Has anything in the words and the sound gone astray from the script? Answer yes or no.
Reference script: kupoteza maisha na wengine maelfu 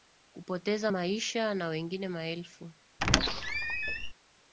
yes